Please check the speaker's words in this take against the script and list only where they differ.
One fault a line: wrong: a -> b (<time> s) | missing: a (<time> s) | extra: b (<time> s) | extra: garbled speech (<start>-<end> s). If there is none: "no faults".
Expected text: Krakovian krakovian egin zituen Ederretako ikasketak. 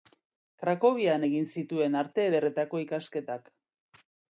missing: krakovian (1.3 s)
extra: Arte (2.1 s)